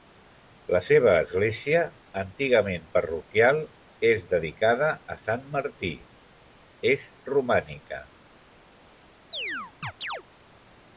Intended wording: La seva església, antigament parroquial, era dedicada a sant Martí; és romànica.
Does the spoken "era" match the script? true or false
false